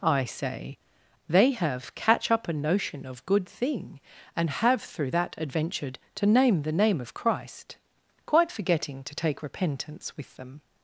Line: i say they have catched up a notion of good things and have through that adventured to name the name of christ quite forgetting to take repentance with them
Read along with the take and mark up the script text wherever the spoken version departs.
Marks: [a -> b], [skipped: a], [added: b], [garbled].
i say they have [catched -> catch] up a notion of good [things -> thing] and have through that adventured to name the name of christ quite forgetting to take repentance with them